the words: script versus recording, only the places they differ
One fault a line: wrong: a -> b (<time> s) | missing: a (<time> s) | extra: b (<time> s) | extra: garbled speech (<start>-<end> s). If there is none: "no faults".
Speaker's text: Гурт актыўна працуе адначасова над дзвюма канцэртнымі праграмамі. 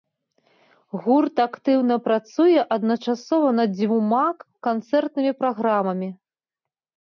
no faults